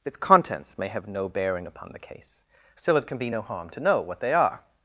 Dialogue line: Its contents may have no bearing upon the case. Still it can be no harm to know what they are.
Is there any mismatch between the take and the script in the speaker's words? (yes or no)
no